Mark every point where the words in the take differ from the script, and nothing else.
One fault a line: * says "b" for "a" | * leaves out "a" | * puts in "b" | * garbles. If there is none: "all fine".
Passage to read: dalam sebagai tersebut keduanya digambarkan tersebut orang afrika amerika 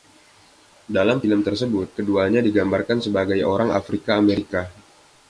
* says "film" for "sebagai"
* says "sebagai" for "tersebut"